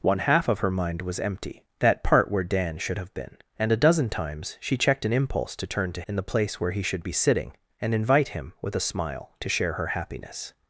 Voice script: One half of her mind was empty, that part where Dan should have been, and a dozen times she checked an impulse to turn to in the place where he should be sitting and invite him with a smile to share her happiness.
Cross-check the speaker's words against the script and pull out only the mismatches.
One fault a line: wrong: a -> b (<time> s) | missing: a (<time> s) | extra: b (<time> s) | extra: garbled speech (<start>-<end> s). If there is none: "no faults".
no faults